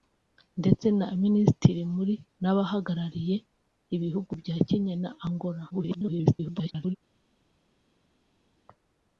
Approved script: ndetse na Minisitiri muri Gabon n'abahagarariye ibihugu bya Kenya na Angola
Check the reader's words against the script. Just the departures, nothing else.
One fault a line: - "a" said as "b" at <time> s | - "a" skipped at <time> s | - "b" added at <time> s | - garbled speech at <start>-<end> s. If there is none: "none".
- "Gabon" skipped at 2.1 s
- garbled speech at 5.7-7.0 s